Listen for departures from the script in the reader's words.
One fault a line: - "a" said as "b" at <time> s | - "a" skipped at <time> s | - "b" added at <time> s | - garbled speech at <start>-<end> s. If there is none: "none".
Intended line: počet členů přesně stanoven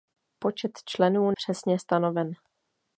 none